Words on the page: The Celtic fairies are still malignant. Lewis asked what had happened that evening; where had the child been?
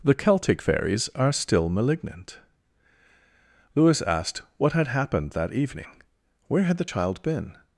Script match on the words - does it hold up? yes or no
yes